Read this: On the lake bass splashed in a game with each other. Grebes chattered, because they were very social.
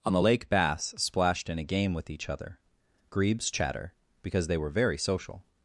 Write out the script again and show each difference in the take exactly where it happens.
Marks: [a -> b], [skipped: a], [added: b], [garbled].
On the lake bass splashed in a game with each other. Grebes [chattered, -> chatter] because they were very social.